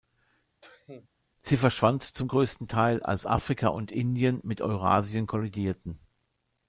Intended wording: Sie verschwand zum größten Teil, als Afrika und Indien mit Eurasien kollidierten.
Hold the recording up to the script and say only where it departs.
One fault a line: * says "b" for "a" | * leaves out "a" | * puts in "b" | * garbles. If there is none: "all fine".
all fine